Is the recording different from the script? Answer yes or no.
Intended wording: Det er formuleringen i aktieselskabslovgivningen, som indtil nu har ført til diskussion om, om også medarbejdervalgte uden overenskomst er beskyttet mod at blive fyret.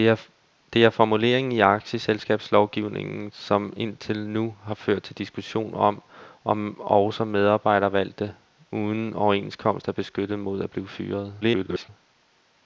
yes